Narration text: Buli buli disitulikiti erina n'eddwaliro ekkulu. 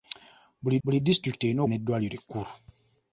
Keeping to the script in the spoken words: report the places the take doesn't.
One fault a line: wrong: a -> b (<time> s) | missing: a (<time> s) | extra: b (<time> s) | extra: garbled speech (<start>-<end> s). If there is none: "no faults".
no faults